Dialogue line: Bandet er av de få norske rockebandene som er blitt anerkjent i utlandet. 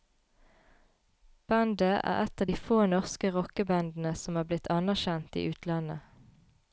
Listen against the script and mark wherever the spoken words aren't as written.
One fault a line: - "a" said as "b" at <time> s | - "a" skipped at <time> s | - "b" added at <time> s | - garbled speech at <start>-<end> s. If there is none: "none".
- "et" added at 2.2 s